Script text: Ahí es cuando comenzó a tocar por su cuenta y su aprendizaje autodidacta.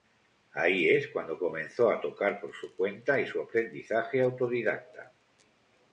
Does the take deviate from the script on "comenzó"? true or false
false